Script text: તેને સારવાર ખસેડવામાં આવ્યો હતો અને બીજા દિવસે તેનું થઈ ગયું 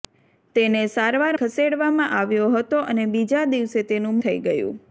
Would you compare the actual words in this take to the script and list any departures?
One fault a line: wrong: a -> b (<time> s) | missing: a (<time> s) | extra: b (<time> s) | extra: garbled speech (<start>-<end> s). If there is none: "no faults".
no faults